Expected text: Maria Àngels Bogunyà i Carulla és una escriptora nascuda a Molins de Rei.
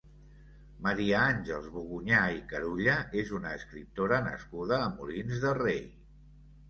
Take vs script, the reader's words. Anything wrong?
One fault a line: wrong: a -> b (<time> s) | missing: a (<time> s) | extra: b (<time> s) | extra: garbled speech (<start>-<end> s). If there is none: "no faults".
no faults